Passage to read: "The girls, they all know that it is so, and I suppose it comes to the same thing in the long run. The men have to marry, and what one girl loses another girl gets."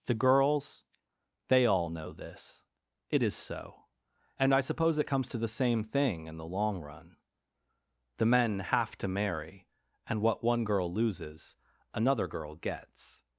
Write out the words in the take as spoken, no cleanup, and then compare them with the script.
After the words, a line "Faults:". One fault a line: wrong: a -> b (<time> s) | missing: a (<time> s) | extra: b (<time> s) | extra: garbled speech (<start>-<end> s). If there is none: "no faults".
"The girls, they all know this it is so, and I suppose it comes to the same thing in the long run. The men have to marry, and what one girl loses another girl gets."
Faults:
wrong: that -> this (2.1 s)